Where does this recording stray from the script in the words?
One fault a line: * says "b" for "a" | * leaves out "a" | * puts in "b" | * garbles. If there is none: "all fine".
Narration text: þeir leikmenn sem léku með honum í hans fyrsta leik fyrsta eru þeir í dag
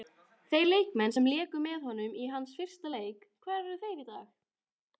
* says "hvar" for "fyrsta"